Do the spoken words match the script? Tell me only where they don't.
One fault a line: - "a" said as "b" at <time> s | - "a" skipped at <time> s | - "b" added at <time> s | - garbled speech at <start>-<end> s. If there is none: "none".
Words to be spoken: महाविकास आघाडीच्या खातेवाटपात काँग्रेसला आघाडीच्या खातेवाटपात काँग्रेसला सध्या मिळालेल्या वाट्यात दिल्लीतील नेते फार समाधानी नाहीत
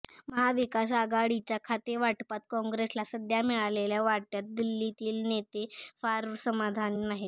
- "आघाडीच्या खातेवाटपात काँग्रेसला" skipped at 3.0 s